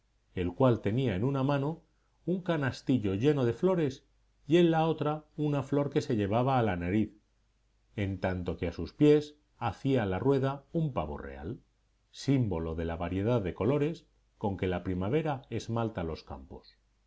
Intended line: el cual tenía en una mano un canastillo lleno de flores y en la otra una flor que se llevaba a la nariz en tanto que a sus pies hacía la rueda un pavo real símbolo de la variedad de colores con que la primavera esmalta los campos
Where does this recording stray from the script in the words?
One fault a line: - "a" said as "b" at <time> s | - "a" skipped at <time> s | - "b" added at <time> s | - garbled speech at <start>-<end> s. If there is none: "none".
none